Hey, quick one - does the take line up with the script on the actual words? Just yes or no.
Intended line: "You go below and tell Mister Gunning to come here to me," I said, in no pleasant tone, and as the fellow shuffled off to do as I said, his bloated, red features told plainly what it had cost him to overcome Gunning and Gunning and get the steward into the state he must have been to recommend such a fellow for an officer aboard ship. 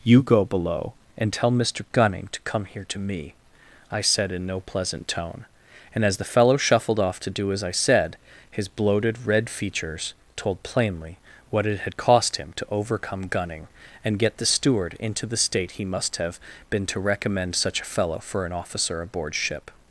no